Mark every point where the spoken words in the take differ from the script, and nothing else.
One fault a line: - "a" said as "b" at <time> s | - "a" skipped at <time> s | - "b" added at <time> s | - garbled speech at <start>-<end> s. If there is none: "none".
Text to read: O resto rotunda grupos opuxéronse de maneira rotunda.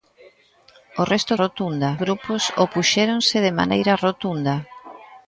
none